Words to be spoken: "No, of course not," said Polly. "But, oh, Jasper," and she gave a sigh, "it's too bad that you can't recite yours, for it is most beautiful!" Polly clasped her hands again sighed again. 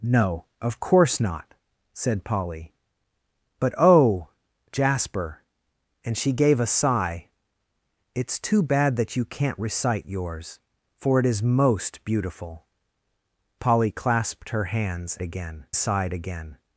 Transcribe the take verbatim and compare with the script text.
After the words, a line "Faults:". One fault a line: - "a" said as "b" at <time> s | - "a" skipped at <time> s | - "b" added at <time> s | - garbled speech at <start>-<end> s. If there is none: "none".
"No, of course not," said Polly. "But, oh, Jasper," and she gave a sigh, "it's too bad that you can't recite yours, for it is most beautiful!" Polly clasped her hands again sighed again.
Faults:
none